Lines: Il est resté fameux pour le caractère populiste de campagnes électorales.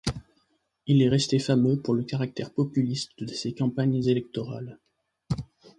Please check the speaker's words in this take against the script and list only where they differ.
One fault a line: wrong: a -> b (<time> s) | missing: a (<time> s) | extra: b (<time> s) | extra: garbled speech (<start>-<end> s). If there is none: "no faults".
extra: ses (3.3 s)